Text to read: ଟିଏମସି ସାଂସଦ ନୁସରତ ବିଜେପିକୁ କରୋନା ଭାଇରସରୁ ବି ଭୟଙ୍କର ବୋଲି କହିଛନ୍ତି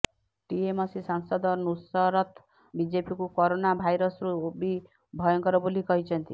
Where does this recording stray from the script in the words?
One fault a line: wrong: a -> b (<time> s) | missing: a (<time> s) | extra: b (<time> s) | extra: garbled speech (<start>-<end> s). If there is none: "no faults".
no faults